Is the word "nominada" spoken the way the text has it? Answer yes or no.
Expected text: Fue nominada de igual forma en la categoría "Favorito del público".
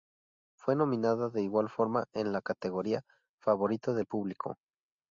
yes